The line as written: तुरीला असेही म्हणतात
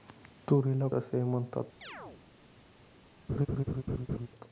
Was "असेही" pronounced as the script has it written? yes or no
yes